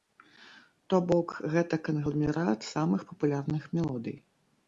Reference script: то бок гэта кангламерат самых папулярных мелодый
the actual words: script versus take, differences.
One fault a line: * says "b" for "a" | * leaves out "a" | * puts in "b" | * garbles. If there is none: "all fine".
all fine